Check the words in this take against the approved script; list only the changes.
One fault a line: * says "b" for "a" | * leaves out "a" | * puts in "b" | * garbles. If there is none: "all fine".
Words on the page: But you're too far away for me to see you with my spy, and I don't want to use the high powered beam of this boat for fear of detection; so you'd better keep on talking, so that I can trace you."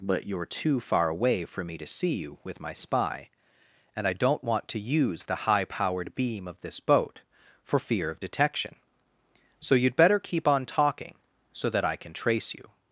all fine